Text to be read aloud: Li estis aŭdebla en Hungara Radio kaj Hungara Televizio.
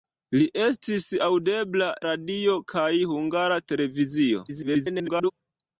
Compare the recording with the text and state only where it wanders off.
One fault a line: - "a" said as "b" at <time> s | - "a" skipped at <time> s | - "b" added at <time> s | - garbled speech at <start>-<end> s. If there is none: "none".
- "en Hungara" skipped at 1.9 s
- garbled speech at 4.5-5.3 s